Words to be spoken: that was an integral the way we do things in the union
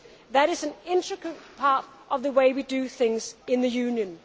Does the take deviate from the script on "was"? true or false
true